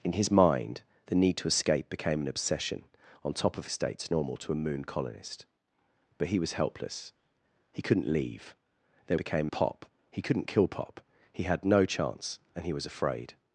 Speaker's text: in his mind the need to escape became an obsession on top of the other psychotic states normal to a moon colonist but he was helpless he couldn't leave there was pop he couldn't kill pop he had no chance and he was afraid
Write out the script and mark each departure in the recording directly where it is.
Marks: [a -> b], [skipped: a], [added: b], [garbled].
in his mind the need to escape became an obsession on top of [skipped: the other psychotic] states normal to a moon colonist but he was helpless he couldn't leave there [was -> became] pop he couldn't kill pop he had no chance and he was afraid